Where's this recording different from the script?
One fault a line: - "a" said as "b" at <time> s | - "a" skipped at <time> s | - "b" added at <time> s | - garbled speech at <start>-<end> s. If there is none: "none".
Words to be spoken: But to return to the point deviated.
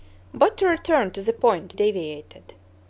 none